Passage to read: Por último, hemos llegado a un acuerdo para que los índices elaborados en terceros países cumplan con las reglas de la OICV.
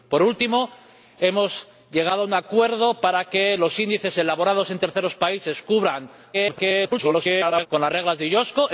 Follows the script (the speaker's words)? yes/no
no